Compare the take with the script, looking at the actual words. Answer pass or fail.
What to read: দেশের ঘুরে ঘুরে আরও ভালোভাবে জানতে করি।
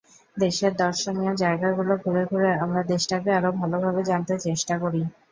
fail